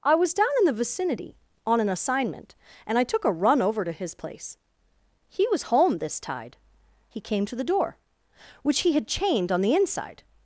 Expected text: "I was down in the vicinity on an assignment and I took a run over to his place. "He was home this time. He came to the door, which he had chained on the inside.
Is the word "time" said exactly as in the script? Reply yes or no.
no